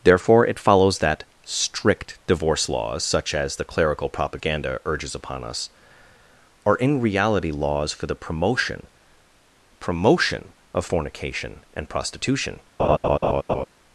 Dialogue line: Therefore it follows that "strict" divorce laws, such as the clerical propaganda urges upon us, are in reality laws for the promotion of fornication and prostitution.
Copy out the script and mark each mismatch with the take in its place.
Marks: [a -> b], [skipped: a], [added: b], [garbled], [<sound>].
Therefore it follows that "strict" divorce laws, such as the clerical propaganda urges upon us, are in reality laws for the promotion [added: promotion] of fornication and prostitution. [laugh]